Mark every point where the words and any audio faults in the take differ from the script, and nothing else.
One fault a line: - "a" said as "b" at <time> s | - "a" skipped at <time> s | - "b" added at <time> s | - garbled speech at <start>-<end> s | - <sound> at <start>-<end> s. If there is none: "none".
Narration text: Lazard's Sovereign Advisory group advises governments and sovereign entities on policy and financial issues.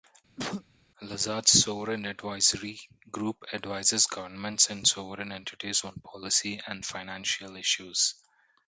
- cough at 0.4-0.6 s